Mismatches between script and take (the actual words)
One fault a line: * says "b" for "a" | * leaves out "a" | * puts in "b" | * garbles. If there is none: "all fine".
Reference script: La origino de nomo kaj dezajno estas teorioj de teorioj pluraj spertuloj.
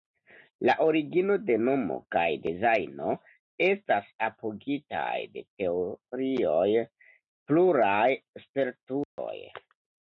* says "apogitaj" for "teorioj"